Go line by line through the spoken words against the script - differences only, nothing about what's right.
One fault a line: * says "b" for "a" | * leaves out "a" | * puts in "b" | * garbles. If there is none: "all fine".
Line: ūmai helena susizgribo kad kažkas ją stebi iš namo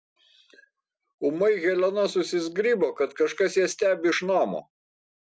all fine